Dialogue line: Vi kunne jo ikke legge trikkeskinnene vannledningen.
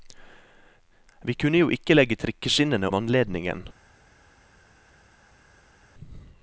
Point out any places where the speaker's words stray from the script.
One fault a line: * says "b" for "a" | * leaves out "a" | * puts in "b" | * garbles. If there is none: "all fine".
all fine